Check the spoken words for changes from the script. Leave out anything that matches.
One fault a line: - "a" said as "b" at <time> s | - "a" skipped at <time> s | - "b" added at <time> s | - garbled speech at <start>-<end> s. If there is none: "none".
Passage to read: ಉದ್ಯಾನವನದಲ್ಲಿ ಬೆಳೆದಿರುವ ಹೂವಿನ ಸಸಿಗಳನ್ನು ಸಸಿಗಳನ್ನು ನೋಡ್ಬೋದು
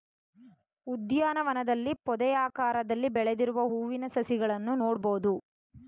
- "ಪೊದೆಯಾಕಾರದಲ್ಲಿ" added at 2.1 s
- "ಸಸಿಗಳನ್ನು" skipped at 4.8 s